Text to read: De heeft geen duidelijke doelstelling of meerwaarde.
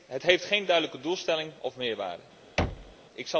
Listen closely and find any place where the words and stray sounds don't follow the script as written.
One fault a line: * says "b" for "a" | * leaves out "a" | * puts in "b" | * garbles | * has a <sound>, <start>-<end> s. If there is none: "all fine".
* says "Het" for "De"
* has a thud, 2.6-3.0 s